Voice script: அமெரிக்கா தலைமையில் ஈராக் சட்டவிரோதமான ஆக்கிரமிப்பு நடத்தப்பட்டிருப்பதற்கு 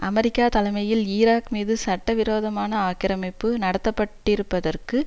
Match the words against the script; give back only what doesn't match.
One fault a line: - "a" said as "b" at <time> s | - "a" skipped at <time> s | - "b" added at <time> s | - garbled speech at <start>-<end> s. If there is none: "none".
- "மீது" added at 1.5 s